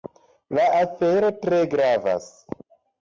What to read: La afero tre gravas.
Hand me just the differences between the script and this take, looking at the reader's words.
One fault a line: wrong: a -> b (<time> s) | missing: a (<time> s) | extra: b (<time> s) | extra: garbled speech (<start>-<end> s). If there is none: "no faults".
no faults